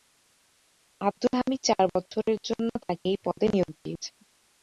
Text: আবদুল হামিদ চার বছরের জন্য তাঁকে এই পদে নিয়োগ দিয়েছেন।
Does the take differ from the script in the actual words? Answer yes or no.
no